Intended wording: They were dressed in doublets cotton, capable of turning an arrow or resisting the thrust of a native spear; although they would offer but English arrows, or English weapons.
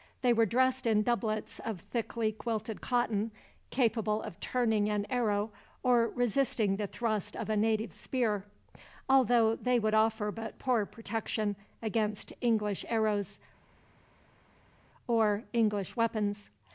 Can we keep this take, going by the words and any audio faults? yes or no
no